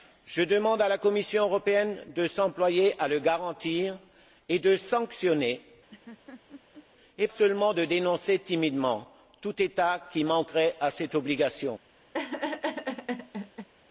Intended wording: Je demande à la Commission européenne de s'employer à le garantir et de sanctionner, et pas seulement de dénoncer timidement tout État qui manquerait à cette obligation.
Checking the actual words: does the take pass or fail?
fail